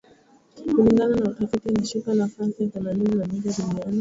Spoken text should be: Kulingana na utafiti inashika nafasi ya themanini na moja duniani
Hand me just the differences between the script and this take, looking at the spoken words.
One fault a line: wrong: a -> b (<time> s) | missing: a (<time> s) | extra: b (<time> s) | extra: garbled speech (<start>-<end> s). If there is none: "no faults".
no faults